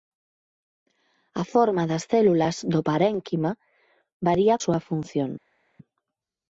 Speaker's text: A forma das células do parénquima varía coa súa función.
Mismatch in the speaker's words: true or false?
true